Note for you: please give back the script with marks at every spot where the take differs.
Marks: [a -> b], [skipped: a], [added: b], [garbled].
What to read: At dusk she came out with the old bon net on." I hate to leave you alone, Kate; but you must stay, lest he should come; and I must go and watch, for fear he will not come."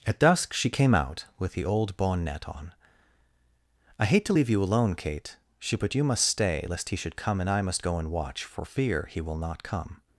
At dusk she came out with the old bon net on." I hate to leave you alone, Kate; [added: she] but you must stay, lest he should come; and I must go and watch, for fear he will not come."